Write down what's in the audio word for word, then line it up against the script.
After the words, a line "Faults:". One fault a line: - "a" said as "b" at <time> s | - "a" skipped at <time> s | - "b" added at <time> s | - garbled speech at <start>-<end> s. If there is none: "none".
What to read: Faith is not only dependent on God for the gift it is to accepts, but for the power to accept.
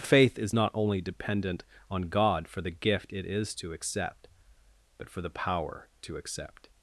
Faith is not only dependent on God for the gift it is to accept, but for the power to accept.
Faults:
- "accepts" said as "accept" at 3.7 s